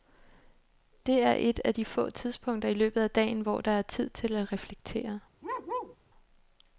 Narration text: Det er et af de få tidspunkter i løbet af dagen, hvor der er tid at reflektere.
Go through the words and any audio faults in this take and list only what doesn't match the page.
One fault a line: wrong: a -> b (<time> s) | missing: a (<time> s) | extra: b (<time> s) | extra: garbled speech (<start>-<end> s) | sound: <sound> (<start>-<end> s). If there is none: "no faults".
extra: til (4.1 s)
sound: bark (5.4-6.0 s)